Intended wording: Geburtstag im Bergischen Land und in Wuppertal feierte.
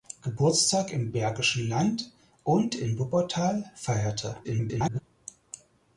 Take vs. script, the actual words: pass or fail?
fail